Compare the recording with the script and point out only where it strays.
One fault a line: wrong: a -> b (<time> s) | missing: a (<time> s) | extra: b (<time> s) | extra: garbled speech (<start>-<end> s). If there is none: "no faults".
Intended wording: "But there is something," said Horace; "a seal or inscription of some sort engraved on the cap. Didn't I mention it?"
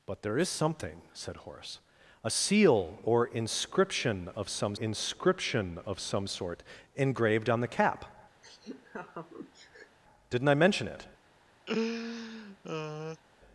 extra: inscription of some (4.7 s)